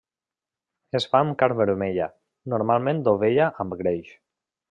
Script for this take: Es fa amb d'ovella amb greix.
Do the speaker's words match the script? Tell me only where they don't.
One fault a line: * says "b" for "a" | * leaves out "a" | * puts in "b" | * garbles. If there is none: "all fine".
* puts in "carn vermella normalment"